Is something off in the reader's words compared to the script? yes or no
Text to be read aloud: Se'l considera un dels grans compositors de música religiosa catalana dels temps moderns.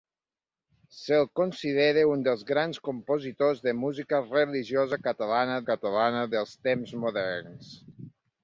yes